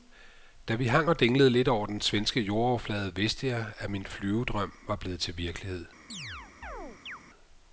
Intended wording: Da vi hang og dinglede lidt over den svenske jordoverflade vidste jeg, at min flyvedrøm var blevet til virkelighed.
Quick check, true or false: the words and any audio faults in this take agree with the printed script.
false